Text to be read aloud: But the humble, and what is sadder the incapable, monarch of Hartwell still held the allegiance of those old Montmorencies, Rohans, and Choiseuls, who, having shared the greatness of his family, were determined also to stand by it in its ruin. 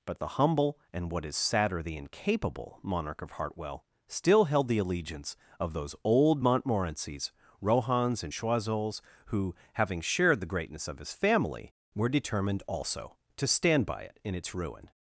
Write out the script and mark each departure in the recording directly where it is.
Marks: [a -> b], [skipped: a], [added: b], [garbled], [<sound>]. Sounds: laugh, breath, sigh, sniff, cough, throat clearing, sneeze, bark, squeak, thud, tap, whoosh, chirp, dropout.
But the humble, and what is sadder the incapable, monarch of Hartwell still held the allegiance of those old Montmorencies, Rohans, and Choiseuls, who, having shared the greatness of his family, were determined also to stand by it in its ruin.